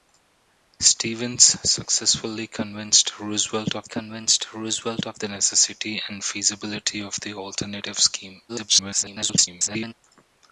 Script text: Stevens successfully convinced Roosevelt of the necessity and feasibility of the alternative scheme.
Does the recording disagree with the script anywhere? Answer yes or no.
yes